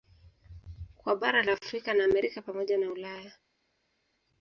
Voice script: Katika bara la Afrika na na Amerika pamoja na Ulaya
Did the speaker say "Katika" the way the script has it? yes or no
no